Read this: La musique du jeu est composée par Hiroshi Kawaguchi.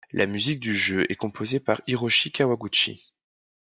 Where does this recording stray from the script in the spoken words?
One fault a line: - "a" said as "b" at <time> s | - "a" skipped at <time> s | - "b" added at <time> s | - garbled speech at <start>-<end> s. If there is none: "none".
none